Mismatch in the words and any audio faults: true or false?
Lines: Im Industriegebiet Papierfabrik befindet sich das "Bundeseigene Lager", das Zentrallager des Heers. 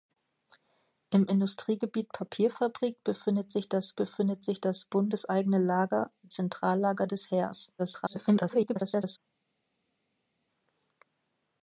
true